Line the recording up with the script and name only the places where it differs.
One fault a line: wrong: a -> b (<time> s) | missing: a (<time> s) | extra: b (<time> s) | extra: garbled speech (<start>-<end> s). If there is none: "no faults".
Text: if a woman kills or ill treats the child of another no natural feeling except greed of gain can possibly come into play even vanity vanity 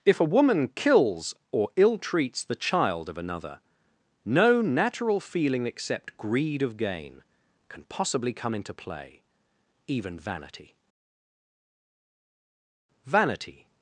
no faults